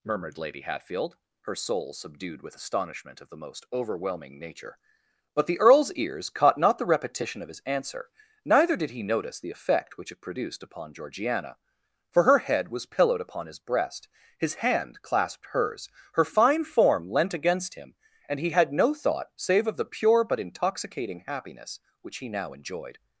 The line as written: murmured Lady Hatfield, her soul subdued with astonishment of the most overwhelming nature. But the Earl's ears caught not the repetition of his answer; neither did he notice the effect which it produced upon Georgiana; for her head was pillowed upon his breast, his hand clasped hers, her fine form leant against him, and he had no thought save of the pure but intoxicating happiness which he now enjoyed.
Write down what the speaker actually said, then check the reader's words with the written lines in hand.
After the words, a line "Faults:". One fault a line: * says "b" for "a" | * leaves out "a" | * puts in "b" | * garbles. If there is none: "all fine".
murmured Lady Hatfield, her soul subdued with astonishment of the most overwhelming nature. But the Earl's ears caught not the repetition of his answer; neither did he notice the effect which it produced upon Georgiana; for her head was pillowed upon his breast, his hand clasped hers, her fine form leant against him, and he had no thought save of the pure but intoxicating happiness which he now enjoyed.
Faults:
all fine